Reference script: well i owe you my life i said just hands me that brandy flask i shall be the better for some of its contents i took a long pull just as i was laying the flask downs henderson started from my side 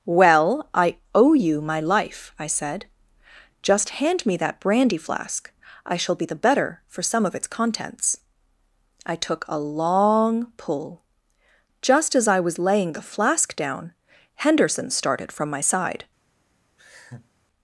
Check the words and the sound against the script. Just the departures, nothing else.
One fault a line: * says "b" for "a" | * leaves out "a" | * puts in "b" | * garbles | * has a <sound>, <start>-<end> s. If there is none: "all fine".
* says "hand" for "hands"
* says "down" for "downs"
* has a laugh, 16.8-17.3 s